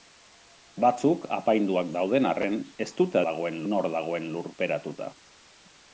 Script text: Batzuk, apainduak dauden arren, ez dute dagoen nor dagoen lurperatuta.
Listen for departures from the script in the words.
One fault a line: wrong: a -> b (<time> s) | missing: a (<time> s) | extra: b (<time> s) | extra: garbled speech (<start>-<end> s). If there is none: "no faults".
no faults